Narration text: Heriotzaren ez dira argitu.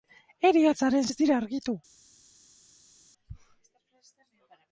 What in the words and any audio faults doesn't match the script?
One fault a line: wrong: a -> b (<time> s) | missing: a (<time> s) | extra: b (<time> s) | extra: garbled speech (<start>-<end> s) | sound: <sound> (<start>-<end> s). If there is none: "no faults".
no faults